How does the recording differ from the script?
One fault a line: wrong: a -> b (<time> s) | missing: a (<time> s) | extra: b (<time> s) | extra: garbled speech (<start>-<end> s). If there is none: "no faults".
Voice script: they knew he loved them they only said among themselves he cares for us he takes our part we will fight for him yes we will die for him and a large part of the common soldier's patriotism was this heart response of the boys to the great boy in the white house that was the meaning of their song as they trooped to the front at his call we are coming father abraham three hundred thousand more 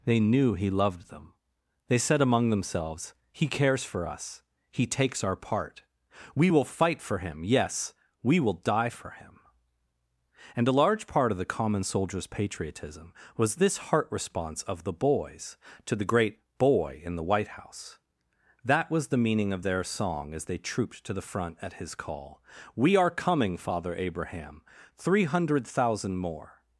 missing: only (2.0 s)